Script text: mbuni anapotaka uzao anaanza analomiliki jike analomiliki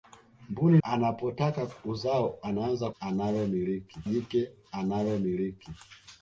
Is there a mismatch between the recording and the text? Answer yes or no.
no